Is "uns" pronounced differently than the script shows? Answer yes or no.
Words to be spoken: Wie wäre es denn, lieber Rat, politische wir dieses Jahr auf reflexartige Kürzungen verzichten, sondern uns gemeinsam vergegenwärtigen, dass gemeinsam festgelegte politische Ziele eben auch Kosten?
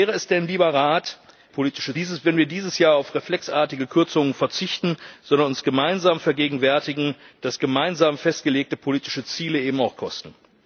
no